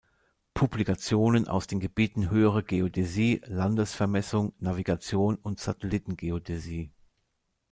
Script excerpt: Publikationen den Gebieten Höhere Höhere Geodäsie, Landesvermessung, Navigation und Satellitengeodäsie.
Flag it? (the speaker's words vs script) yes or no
yes